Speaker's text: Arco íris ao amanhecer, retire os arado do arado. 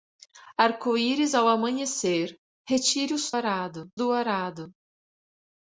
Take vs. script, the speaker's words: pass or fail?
pass